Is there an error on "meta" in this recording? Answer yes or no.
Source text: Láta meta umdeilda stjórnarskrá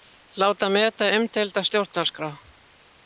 no